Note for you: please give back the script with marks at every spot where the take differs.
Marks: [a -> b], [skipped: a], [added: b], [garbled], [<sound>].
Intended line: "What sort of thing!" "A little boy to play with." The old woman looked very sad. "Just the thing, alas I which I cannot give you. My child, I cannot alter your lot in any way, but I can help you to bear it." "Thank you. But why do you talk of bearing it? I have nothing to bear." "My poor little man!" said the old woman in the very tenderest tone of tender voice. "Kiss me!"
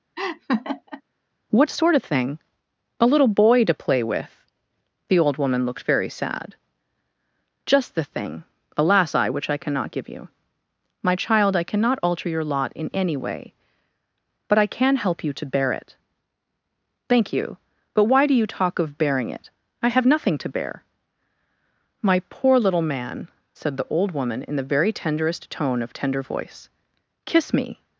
[laugh] "What sort of thing!" "A little boy to play with." The old woman looked very sad. "Just the thing, alas I which I cannot give you. My child, I cannot alter your lot in any way, but I can help you to bear it." "Thank you. But why do you talk of bearing it? I have nothing to bear." "My poor little man!" said the old woman in the very tenderest tone of tender voice. "Kiss me!"